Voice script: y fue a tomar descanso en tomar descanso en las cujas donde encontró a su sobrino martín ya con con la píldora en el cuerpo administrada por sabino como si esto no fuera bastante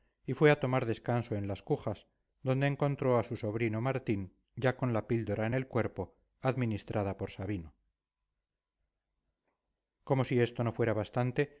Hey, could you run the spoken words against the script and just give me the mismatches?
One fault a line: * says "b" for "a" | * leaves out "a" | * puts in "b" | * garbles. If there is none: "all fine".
* leaves out "tomar descanso en"
* leaves out "con"